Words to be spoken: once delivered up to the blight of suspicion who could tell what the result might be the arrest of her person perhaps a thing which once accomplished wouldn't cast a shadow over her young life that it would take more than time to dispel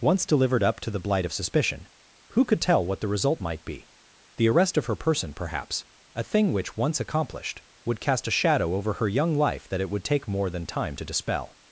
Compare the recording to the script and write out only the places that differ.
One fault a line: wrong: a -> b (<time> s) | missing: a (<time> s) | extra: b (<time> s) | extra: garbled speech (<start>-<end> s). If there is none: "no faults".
wrong: wouldn't -> would (7.8 s)